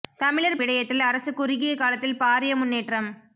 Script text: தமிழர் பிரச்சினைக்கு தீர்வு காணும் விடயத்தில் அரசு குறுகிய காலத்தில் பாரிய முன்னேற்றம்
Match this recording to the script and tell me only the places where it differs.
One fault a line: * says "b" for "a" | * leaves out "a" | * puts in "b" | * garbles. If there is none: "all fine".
* leaves out "பிரச்சினைக்கு தீர்வு காணும்"